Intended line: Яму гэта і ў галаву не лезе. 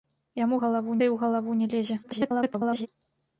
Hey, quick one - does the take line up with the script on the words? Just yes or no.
no